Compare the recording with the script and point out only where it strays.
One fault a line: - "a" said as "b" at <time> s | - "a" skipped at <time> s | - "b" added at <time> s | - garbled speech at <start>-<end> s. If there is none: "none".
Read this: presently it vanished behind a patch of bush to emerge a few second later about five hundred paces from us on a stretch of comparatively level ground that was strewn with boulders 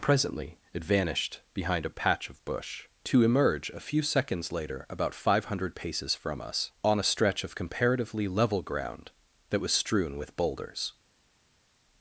- "second" said as "seconds" at 4.0 s